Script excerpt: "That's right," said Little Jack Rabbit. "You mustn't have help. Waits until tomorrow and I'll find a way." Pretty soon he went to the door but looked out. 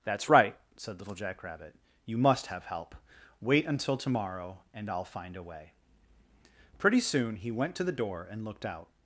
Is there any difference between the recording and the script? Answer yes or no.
yes